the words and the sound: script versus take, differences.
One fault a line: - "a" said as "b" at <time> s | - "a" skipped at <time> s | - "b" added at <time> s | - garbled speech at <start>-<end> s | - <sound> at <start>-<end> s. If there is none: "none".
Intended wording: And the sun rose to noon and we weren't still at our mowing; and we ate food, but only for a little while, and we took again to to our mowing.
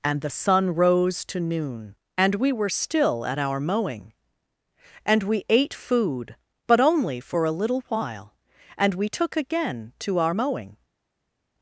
- "weren't" said as "were" at 2.5 s
- "to" skipped at 10.2 s